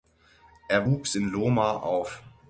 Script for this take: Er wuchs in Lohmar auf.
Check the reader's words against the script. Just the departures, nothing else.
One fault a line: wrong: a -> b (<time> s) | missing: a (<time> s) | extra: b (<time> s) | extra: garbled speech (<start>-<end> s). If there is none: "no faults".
no faults